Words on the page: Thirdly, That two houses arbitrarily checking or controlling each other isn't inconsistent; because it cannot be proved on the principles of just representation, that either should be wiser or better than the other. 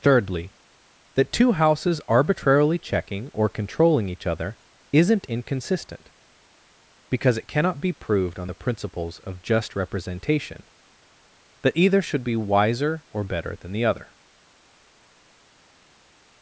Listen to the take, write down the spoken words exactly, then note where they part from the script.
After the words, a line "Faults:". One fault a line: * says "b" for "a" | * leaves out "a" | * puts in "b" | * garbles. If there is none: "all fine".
Thirdly, That two houses arbitrarily checking or controlling each other isn't inconsistent; because it cannot be proved on the principles of just representation, that either should be wiser or better than the other.
Faults:
all fine